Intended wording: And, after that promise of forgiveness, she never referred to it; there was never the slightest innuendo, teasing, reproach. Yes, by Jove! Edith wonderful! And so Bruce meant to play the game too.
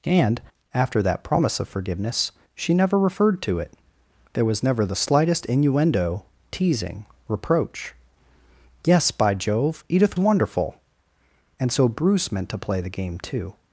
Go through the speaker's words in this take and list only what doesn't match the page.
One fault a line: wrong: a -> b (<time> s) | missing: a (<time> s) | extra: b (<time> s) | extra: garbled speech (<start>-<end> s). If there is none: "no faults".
no faults